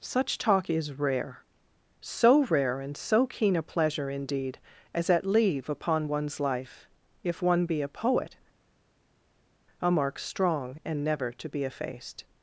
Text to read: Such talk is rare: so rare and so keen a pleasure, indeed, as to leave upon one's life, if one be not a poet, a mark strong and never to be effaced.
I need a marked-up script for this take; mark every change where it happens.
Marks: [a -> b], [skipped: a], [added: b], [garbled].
Such talk is rare: so rare and so keen a pleasure, indeed, as [to -> at] leave upon one's life, if one be [skipped: not] a poet, a mark strong and never to be effaced.